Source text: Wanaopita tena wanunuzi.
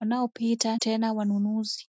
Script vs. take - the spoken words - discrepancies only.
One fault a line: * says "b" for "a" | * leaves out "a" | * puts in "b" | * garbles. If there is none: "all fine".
all fine